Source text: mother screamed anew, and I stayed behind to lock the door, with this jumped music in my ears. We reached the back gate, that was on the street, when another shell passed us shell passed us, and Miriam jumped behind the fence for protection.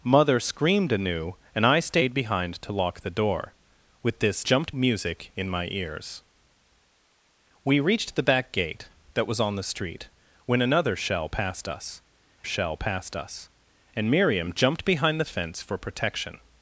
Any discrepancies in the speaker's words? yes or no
no